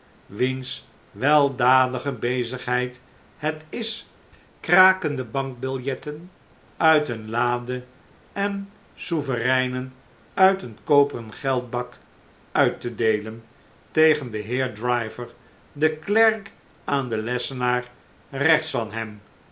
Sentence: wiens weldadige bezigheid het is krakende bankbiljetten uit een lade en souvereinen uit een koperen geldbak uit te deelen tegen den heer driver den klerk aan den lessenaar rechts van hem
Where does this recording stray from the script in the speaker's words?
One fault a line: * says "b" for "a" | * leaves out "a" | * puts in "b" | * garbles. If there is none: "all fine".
all fine